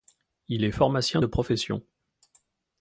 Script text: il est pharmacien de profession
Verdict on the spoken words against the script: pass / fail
pass